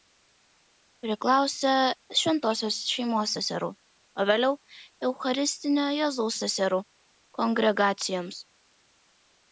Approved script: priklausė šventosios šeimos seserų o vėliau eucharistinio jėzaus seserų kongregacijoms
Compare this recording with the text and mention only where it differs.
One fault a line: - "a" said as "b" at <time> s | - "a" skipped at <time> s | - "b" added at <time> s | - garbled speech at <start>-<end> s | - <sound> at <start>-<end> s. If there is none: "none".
none